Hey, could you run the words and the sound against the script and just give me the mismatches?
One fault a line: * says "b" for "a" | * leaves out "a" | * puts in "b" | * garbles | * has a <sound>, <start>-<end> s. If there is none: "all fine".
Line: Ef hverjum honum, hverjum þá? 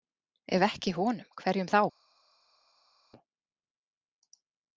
* says "ekki" for "hverjum"